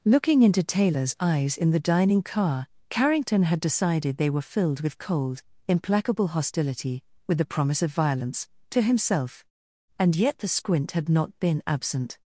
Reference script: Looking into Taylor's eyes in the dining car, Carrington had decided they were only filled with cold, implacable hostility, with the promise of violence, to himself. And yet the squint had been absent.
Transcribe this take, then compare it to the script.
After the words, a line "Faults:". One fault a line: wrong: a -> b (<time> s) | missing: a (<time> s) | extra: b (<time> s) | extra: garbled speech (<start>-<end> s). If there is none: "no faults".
Looking into Taylor's eyes in the dining car, Carrington had decided they were filled with cold, implacable hostility, with the promise of violence, to himself. And yet the squint had not been absent.
Faults:
missing: only (4.4 s)
extra: not (11.1 s)